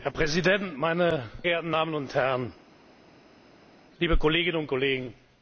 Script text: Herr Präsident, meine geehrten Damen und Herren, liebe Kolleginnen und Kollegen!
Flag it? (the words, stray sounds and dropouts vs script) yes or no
no